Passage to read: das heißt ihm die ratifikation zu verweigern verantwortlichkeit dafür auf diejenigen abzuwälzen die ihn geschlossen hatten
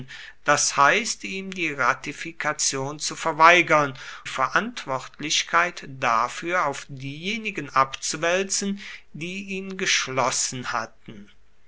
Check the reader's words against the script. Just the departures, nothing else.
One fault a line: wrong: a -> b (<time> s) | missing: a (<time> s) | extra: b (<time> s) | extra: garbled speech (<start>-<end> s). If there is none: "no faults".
no faults